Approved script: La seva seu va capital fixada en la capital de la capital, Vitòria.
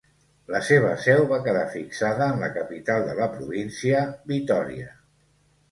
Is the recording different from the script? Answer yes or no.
yes